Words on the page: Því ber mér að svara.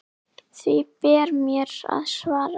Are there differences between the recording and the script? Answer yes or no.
no